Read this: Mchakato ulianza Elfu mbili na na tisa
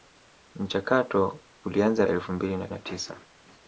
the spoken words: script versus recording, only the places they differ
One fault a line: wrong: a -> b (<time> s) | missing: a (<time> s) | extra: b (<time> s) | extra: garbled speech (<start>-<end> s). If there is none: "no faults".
no faults